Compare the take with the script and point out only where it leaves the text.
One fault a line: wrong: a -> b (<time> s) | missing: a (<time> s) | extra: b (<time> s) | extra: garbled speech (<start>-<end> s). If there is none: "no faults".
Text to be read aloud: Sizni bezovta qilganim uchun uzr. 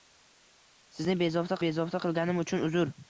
extra: bezovta (1.6 s)